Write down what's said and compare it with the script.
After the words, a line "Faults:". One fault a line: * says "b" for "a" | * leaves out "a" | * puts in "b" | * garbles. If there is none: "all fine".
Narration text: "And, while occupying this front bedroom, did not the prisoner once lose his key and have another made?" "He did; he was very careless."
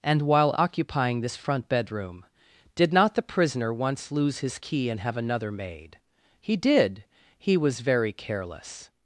"And, while occupying this front bedroom, did not the prisoner once lose his key and have another made?" "He did; he was very careless."
Faults:
all fine